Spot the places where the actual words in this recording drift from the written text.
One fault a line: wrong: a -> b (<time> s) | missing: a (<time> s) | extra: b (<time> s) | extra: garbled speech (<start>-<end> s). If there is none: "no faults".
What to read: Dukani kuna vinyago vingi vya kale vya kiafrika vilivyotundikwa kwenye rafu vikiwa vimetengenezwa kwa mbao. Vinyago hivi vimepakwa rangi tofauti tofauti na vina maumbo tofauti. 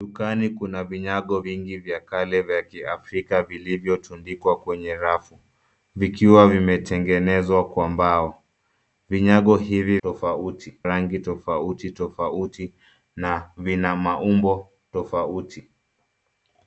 wrong: vimepakwa -> tofauti (10.0 s)